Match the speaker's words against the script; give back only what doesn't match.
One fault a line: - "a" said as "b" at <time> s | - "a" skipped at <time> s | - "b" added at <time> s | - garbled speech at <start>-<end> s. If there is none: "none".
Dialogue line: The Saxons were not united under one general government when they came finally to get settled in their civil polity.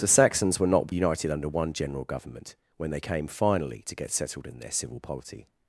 none